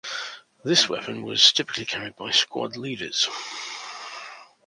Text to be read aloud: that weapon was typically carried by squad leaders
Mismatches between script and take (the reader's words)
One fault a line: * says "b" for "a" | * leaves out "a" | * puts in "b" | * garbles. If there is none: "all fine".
* says "this" for "that"